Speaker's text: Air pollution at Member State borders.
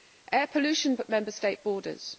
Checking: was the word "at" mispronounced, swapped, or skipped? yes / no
no